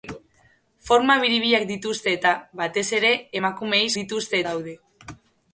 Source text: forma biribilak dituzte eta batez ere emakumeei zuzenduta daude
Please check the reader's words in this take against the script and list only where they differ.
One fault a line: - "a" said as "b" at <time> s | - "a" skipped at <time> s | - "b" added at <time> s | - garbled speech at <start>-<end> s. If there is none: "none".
- "zuzenduta" said as "dituzte" at 4.0 s